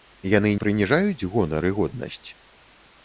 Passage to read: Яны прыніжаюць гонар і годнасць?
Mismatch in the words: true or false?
false